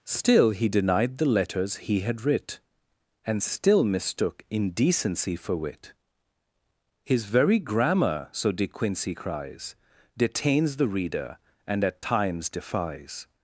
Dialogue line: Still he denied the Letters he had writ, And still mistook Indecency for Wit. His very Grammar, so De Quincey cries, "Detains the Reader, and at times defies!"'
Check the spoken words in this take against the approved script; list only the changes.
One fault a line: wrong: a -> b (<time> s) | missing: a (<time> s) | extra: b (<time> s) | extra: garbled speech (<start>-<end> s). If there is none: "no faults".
no faults